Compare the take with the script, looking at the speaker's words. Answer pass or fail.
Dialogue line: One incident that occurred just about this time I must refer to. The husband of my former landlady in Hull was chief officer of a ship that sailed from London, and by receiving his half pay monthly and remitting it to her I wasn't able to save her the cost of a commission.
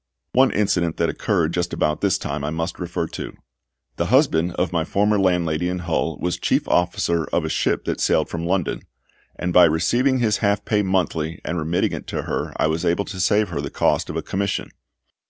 fail